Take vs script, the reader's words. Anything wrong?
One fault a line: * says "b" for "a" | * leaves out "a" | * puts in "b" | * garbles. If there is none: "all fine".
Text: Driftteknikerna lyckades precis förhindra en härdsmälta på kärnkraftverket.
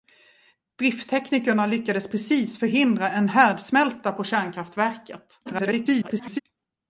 * garbles